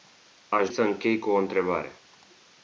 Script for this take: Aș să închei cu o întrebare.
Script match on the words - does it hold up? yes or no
yes